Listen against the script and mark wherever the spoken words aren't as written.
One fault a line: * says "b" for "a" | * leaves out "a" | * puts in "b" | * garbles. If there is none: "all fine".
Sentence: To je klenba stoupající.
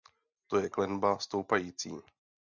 all fine